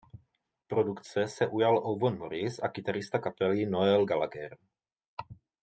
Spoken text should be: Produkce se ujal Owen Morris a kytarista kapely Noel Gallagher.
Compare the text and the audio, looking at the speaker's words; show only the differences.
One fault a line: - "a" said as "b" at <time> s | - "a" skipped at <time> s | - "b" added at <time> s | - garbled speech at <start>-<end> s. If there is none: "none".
none